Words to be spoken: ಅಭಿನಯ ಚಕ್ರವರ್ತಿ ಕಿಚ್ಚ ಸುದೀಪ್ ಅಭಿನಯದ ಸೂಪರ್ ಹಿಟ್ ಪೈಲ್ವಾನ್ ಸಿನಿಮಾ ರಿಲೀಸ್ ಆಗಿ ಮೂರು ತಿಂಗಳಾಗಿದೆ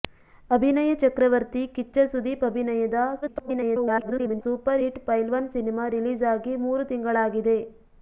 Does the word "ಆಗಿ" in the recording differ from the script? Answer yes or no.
no